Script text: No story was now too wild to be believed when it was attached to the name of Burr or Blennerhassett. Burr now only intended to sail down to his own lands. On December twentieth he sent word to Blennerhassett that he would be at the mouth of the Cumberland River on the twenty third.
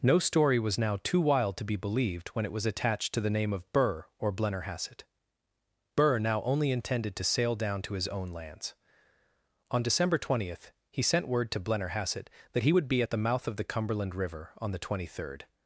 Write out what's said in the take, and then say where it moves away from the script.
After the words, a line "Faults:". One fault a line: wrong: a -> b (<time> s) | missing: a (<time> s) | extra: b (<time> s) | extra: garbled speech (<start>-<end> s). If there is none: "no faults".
No story was now too wild to be believed when it was attached to the name of Burr or Blennerhassett. Burr now only intended to sail down to his own lands. On December twentieth he sent word to Blennerhassett that he would be at the mouth of the Cumberland River on the twenty third.
Faults:
no faults